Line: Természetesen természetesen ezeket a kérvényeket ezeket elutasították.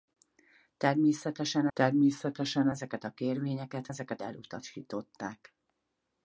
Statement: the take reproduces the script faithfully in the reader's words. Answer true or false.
true